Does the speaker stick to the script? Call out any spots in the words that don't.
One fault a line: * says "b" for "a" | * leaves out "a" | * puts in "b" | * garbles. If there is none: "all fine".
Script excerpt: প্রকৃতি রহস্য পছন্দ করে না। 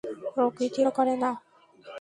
* leaves out "রহস্য পছন্দ"